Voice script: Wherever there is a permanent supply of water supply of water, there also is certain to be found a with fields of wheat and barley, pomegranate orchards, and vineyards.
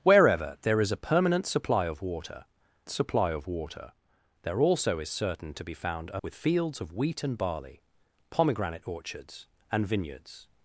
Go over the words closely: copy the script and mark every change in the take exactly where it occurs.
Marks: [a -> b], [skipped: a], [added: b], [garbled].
Wherever there is a permanent supply of water supply of water, there also is certain to be found a with fields of wheat and barley, pomegranate orchards, and vineyards.